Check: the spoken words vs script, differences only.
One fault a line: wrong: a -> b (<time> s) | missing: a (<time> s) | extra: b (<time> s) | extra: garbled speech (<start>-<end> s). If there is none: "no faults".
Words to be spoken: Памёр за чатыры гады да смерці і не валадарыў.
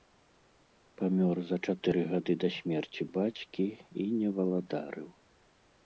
extra: бацькі (3.2 s)